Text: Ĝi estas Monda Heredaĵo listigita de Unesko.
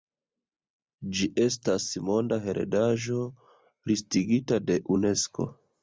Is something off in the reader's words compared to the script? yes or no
no